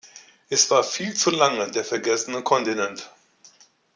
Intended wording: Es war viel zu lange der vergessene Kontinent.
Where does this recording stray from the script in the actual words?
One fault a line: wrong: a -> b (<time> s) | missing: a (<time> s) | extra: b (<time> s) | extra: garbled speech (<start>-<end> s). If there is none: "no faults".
no faults